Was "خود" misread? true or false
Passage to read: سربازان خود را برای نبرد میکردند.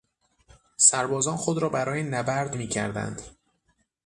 false